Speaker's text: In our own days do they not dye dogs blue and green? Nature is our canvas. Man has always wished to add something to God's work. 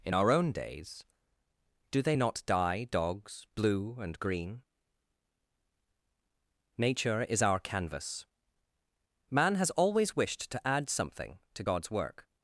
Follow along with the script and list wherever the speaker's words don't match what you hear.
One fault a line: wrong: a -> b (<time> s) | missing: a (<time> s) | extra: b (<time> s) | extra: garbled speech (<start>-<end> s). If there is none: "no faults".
no faults